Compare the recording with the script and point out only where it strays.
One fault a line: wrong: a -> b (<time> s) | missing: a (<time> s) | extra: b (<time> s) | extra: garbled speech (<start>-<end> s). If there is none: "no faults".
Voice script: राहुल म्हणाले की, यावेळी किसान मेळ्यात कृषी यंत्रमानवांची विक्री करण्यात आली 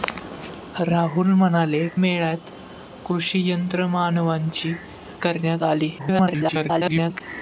missing: की यावेळी किसान (1.9 s)
missing: विक्री (4.8 s)
extra: garbled speech (6.0-7.2 s)